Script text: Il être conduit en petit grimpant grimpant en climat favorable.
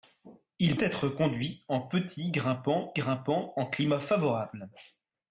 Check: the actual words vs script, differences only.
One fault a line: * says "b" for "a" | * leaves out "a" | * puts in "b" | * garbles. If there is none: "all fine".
all fine